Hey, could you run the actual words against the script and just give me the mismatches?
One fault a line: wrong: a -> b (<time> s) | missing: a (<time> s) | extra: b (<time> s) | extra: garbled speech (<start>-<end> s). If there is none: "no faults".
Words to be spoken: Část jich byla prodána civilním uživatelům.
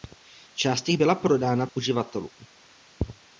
missing: civilním (1.7 s)